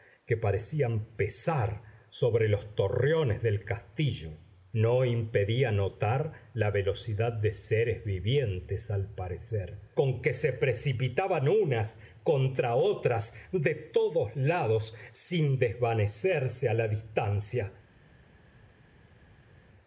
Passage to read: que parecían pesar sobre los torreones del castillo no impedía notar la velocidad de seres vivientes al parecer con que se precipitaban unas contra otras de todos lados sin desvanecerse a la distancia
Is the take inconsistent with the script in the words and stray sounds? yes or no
no